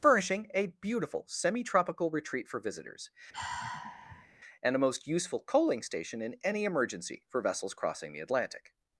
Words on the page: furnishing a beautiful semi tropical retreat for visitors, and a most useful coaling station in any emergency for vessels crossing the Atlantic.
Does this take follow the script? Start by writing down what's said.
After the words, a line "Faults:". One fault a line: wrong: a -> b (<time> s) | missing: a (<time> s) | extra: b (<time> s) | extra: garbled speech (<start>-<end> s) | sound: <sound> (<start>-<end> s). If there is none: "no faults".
furnishing a beautiful semi tropical retreat for visitors, and a most useful coaling station in any emergency for vessels crossing the Atlantic.
Faults:
sound: sigh (3.3-4.3 s)